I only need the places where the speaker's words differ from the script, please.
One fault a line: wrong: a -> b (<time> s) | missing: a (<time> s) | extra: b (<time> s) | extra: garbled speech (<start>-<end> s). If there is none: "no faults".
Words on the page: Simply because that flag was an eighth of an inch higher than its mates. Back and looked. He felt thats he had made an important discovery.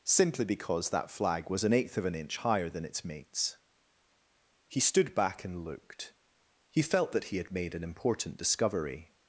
extra: He stood (4.7 s)
wrong: thats -> that (7.1 s)